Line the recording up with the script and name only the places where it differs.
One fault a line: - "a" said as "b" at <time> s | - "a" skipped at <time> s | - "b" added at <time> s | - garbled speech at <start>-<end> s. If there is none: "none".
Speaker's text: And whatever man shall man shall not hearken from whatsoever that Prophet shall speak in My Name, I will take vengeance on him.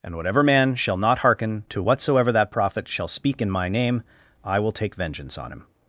- "man shall" skipped at 1.0 s
- "from" said as "to" at 1.7 s